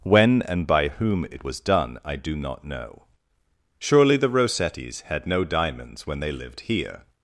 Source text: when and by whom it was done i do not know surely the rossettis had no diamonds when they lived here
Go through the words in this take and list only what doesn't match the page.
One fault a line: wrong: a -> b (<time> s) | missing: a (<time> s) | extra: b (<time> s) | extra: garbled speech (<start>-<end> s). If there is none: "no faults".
no faults